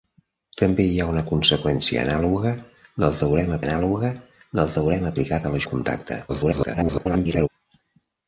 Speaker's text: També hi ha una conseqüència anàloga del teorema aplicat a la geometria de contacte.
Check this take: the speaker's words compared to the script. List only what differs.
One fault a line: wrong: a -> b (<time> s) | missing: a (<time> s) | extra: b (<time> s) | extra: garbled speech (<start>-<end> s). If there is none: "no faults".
extra: anàloga del teorema (3.7 s)
missing: geometria (5.6 s)
extra: garbled speech (6.3-7.5 s)